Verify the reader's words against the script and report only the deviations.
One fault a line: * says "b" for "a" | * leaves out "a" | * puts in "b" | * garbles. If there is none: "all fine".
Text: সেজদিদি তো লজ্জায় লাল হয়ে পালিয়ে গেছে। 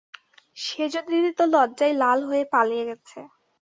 all fine